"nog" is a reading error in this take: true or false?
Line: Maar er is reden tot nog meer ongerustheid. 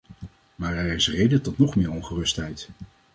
false